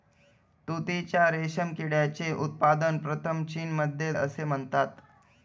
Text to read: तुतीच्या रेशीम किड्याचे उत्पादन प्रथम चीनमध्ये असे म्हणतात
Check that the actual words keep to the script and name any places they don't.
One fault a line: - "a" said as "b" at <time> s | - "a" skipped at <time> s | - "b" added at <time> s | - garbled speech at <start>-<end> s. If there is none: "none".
none